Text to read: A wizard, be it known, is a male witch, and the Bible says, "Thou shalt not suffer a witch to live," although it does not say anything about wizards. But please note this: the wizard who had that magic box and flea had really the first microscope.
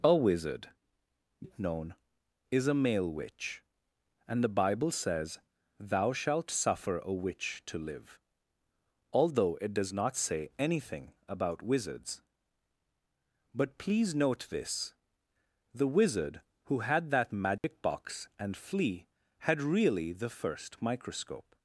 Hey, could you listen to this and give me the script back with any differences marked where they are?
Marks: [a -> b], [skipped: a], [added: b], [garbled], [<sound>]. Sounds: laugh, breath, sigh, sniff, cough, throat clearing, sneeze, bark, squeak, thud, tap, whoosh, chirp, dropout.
A wizard, [skipped: be] it known, is a male witch, and the Bible says, "Thou shalt [skipped: not] suffer a witch to live," although it does not say anything about wizards. But please note this: the wizard who had that magic [dropout] box and flea had really the first microscope.